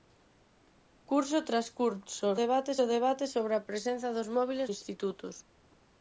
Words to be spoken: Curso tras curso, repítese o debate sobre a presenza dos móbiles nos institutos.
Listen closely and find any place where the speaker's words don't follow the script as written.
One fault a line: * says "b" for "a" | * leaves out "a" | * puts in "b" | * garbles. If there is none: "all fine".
* says "debate" for "repítese"
* leaves out "nos"